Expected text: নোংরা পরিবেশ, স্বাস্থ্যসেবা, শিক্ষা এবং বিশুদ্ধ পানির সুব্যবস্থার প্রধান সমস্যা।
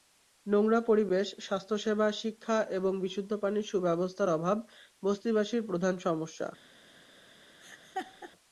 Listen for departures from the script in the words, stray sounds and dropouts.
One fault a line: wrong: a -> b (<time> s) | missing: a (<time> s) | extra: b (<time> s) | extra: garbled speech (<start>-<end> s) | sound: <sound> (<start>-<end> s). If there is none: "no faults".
extra: অভাব বস্তিবাসীর (4.3 s)
sound: laugh (7.6-8.3 s)